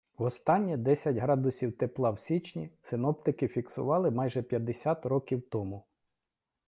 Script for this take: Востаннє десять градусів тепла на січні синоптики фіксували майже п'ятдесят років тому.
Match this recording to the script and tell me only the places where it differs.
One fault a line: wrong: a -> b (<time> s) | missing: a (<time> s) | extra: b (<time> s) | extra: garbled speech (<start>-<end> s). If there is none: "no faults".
wrong: на -> в (2.1 s)